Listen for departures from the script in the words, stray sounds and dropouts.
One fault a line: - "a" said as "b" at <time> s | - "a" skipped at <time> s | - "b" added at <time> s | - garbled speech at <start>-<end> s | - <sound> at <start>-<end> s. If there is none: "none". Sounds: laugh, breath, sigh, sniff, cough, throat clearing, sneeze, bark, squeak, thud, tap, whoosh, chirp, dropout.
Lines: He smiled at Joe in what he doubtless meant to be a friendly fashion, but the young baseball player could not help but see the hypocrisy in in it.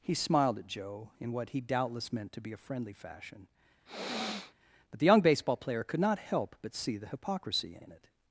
- sniff at 3.9-4.5 s